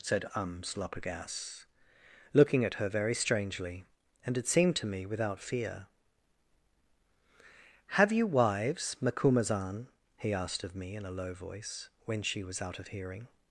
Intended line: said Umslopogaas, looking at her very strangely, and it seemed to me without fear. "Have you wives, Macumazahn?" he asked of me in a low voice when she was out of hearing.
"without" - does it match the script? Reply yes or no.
yes